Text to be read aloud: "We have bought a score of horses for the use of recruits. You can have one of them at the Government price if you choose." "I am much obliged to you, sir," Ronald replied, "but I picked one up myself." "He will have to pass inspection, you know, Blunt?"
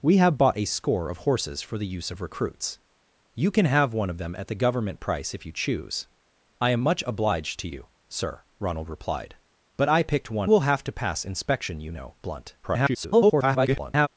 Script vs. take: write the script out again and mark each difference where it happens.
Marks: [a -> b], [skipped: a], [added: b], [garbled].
"We have bought a score of horses for the use of recruits. You can have one of them at the Government price if you choose." "I am much obliged to you, sir," Ronald replied, "but I picked one [skipped: up myself." "He] will have to pass inspection, you know, Blunt?" [garbled]